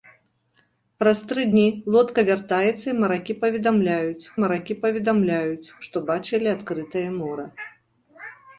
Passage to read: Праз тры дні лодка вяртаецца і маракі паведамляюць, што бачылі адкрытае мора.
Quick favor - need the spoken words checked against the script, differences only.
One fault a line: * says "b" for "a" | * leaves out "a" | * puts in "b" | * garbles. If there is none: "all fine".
* puts in "маракі паведамляюць"